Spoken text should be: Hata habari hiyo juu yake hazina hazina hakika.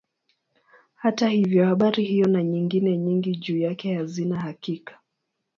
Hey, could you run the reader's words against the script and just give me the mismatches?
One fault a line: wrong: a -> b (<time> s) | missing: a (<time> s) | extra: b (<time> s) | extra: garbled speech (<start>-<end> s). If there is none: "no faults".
extra: hivyo (1.3 s)
extra: na nyingine nyingi (2.3 s)
missing: hazina (4.4 s)